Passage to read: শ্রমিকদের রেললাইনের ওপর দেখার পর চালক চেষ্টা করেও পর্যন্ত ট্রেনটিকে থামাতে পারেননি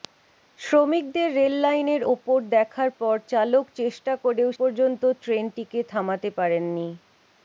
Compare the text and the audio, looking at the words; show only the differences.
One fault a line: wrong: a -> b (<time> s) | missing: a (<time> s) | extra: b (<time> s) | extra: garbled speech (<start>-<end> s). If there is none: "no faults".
no faults